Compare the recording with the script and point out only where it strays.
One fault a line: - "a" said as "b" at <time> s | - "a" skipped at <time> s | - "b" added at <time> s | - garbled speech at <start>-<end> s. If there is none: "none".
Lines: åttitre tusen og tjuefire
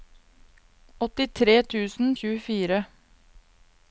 none